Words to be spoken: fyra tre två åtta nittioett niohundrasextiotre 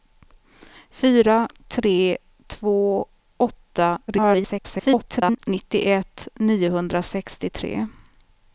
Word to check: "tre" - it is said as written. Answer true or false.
true